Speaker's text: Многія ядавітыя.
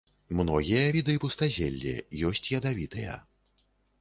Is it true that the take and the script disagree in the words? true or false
true